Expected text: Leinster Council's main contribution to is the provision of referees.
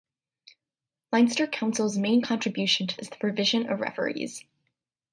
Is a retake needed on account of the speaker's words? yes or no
no